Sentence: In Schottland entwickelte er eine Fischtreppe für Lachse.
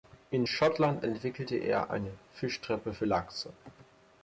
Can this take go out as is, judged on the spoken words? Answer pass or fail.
pass